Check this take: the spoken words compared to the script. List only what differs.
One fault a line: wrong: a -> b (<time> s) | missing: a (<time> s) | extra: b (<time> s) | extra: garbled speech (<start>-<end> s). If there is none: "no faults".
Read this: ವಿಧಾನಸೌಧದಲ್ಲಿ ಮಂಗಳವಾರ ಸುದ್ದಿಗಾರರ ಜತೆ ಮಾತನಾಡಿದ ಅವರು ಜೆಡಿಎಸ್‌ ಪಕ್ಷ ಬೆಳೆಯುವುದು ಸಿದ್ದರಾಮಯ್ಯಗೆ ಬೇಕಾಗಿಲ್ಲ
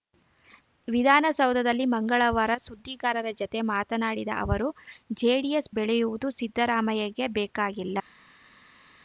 missing: ಪಕ್ಷ (5.7 s)